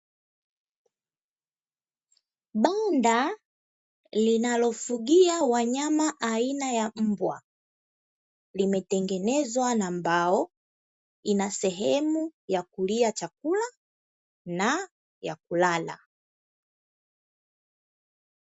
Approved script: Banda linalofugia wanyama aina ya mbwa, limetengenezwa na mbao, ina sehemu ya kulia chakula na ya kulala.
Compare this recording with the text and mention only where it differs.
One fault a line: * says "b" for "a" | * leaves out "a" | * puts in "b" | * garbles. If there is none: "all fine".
all fine